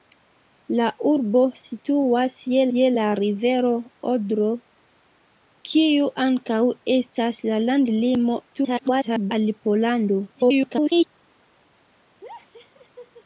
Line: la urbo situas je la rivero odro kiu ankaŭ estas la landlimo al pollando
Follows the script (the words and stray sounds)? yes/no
no